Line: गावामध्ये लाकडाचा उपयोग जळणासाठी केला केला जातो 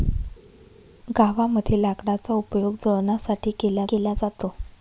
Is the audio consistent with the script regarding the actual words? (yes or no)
yes